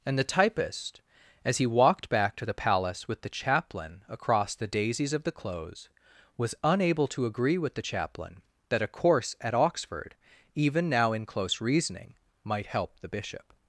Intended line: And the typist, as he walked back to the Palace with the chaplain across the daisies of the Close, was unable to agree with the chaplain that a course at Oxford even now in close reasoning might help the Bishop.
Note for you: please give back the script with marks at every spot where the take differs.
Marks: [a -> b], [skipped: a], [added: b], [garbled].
And the typist, as he walked back to the Palace with the chaplain across the daisies of the Close, was unable to agree with the chaplain that a course at Oxford even now in close reasoning might help the Bishop.